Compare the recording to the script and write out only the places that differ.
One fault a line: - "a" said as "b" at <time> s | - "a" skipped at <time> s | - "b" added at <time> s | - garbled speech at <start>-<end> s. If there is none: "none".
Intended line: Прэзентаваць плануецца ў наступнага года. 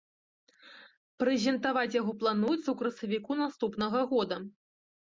- "яго" added at 2.0 s
- "красавіку" added at 2.8 s